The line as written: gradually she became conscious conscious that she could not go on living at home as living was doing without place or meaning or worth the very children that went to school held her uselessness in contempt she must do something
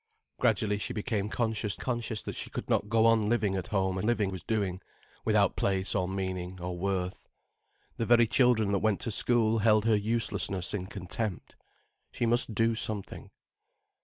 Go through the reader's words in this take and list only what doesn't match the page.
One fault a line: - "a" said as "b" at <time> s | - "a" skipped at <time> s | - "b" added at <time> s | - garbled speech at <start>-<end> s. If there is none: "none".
none